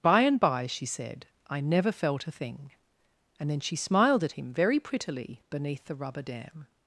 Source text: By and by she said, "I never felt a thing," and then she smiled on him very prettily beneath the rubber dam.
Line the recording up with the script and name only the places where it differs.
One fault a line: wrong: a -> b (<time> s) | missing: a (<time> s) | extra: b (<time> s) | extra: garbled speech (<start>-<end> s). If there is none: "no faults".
wrong: on -> at (4.2 s)